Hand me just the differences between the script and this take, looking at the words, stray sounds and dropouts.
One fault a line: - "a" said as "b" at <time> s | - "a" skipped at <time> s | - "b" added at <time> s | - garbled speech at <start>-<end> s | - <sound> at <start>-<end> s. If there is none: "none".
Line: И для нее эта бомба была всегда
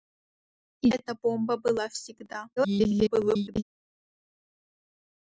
- "для нее" skipped at 0.9 s
- garbled speech at 2.6-3.6 s